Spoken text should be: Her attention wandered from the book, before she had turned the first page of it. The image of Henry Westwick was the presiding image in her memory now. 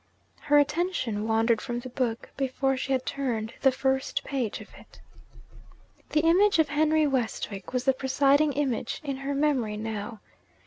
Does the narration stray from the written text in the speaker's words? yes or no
no